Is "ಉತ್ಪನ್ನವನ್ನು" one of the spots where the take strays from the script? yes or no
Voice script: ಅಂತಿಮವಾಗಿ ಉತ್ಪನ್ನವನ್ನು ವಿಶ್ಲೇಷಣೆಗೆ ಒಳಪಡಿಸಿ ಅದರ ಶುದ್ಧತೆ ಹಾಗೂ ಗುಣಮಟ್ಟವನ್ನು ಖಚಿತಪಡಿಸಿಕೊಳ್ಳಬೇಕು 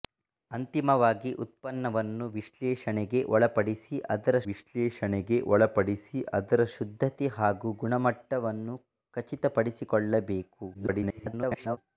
no